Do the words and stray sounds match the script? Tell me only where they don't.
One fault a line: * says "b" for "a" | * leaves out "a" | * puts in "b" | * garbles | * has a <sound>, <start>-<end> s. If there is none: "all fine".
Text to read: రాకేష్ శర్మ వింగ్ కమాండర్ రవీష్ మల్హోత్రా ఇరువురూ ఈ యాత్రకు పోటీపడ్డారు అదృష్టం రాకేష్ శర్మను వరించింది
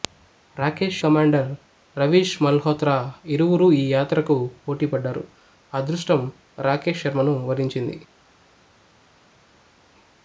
* leaves out "శర్మ వింగ్"